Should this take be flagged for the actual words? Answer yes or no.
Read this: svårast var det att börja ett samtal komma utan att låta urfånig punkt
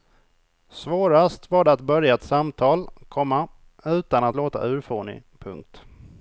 no